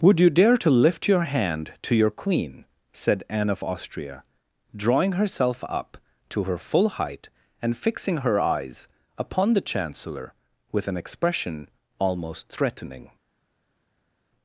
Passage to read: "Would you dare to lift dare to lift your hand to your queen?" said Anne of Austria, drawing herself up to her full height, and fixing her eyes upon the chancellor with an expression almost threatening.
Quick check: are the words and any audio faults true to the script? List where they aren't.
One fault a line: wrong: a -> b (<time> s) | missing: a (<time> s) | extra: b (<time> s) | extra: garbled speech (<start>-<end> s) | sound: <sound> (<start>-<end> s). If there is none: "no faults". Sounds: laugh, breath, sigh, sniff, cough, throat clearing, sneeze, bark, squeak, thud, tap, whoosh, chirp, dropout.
missing: dare to lift (1.1 s)